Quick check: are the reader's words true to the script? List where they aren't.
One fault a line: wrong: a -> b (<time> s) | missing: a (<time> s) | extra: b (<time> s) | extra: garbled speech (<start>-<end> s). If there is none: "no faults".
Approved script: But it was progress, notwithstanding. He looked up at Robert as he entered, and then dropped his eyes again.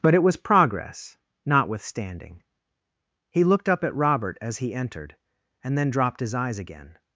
no faults